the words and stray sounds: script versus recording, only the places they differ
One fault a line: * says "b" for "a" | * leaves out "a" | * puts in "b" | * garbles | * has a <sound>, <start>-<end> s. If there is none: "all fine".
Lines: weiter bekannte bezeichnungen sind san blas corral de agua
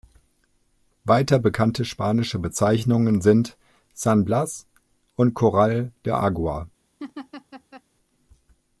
* puts in "spanische"
* puts in "und"
* has a laugh, 7.0-7.8 s